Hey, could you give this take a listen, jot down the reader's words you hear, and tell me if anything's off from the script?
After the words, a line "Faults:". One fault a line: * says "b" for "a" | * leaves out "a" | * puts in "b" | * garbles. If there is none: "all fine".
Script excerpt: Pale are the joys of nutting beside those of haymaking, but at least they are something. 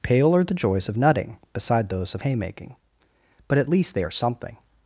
Pale are the joys of nutting beside those of haymaking, but at least they are something.
Faults:
all fine